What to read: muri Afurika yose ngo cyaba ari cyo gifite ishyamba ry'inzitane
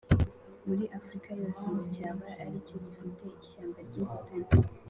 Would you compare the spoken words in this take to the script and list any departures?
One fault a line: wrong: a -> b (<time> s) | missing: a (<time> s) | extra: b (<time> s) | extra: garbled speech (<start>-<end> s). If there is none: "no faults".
no faults